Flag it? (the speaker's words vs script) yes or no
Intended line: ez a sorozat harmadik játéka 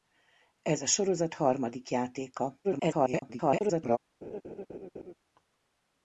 yes